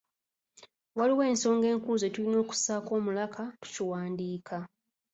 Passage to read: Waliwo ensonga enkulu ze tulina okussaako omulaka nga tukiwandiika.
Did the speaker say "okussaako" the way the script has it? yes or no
yes